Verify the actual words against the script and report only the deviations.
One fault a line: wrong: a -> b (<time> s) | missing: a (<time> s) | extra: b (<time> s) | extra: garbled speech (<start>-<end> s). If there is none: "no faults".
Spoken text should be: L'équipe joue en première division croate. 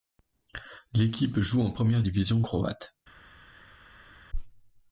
no faults